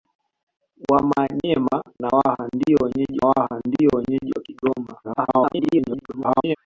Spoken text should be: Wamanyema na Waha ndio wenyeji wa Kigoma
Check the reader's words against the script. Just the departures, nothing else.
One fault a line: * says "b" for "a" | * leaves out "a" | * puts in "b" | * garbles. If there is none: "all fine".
* puts in "Waha ndio wenyeji"
* garbles